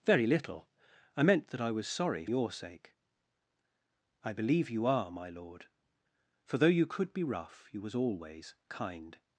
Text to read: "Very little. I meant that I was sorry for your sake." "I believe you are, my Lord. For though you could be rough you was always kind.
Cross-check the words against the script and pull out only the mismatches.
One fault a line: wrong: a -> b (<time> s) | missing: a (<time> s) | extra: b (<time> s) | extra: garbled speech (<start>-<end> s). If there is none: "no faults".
missing: for (2.2 s)